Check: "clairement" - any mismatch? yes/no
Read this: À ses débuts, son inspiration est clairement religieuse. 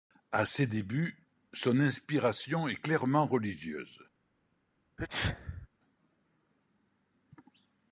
no